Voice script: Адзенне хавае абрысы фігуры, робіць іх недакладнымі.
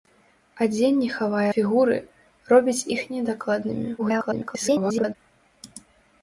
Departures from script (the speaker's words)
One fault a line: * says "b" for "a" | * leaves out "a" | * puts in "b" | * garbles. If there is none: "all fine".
* leaves out "абрысы"
* garbles